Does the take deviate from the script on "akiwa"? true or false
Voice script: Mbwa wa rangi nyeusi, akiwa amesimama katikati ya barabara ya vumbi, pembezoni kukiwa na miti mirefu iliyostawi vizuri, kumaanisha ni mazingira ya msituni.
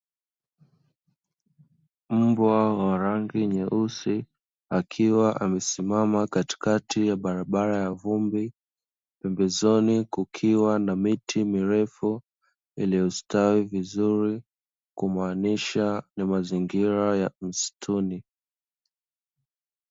false